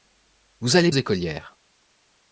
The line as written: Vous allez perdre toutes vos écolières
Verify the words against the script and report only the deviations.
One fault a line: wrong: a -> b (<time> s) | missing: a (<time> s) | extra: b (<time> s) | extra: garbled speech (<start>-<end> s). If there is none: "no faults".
missing: perdre toutes vos (0.9 s)